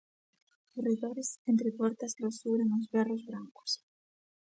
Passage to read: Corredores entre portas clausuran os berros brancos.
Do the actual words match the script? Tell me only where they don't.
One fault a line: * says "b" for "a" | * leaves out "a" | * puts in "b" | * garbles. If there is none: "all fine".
all fine